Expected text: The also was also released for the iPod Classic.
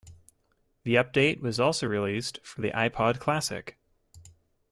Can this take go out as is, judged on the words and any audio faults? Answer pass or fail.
fail